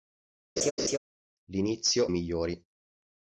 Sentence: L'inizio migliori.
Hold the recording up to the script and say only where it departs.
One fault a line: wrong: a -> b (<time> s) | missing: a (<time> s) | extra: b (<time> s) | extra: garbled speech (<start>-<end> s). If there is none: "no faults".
no faults